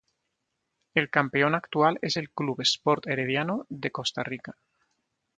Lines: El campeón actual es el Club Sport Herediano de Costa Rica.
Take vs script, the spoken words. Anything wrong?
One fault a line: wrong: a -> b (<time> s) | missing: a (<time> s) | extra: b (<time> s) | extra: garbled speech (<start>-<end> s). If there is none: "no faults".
no faults